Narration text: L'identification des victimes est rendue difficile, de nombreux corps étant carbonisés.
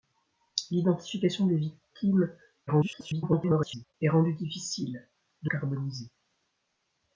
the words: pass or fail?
fail